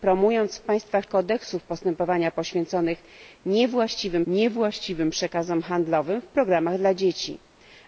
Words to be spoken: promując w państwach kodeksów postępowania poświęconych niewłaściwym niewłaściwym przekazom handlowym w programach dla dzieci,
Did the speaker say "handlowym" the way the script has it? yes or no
yes